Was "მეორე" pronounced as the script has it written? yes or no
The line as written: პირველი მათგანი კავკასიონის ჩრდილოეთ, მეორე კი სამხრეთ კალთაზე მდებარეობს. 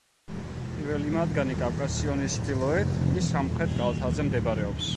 no